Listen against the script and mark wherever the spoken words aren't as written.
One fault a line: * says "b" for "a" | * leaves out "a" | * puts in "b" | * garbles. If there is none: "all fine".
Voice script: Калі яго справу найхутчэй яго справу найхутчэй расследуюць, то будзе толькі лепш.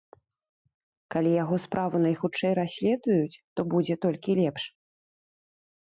* leaves out "яго справу найхутчэй"